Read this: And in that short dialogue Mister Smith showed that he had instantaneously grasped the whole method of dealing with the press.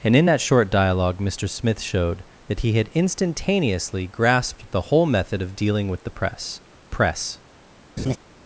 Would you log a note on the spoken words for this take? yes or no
yes